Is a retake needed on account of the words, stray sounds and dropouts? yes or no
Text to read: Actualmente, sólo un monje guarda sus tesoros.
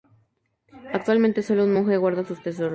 no